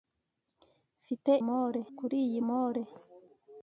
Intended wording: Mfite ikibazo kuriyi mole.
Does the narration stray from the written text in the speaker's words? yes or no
yes